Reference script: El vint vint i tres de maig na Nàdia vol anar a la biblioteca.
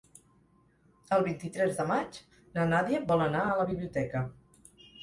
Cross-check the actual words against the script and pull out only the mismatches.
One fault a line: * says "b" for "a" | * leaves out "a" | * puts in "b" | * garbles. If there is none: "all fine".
* leaves out "vint"